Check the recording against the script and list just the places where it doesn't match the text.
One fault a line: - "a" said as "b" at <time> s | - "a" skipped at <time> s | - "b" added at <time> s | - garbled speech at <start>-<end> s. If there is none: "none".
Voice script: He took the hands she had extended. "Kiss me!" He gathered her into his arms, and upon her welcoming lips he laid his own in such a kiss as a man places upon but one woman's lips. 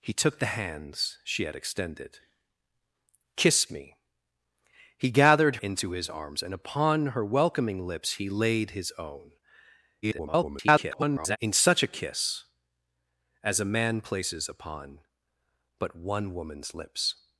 - "her" skipped at 5.6 s
- garbled speech at 10.0-11.4 s